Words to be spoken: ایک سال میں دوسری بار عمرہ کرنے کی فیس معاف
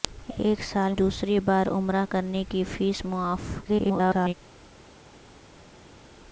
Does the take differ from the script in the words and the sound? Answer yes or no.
yes